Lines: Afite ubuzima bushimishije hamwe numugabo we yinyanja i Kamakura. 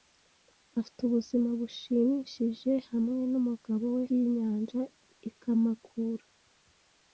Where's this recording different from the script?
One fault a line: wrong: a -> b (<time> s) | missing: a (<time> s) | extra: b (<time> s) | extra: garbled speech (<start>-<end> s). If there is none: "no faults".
no faults